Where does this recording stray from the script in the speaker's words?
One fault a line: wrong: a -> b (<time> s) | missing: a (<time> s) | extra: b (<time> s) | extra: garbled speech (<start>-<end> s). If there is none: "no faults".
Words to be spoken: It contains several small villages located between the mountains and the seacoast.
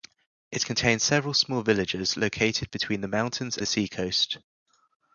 missing: and (3.6 s)